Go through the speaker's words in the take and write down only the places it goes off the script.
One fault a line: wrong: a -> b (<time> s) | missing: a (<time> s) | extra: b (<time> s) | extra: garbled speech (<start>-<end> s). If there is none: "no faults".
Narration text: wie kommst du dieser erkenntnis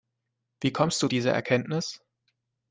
no faults